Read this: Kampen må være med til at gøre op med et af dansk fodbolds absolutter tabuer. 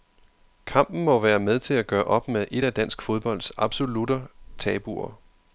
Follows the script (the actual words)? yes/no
yes